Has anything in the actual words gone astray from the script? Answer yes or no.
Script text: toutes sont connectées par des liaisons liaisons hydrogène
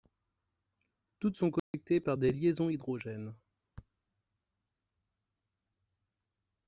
yes